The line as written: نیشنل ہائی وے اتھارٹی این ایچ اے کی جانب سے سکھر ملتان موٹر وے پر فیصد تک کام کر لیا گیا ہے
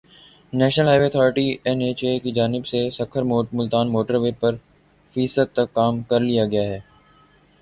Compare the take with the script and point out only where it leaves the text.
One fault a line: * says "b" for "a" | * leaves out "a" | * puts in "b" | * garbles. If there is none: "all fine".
all fine